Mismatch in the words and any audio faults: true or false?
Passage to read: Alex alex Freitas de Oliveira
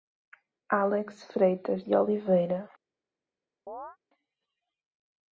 true